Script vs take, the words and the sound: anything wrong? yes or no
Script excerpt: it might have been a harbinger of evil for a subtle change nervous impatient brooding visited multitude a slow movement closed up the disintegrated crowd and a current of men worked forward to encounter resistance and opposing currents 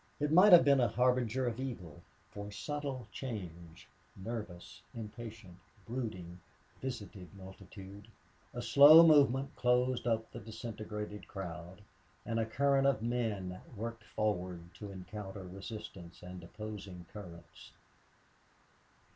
no